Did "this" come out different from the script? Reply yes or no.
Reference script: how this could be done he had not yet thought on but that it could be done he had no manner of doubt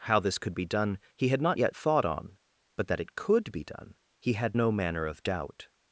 no